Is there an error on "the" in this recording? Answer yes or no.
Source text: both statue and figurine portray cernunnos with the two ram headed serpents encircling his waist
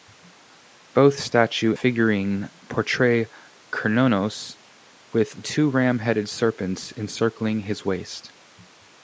yes